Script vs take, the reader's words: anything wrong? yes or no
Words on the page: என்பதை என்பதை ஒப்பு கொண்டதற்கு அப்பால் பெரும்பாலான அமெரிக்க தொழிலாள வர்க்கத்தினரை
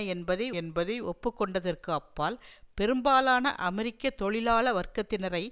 no